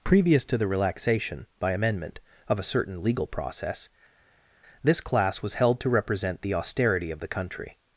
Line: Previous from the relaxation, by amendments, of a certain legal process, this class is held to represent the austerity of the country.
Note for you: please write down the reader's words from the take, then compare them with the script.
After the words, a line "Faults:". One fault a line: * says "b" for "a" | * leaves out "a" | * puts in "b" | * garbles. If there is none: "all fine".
Previous to the relaxation, by amendment, of a certain legal process, this class was held to represent the austerity of the country.
Faults:
* says "to" for "from"
* says "amendment" for "amendments"
* says "was" for "is"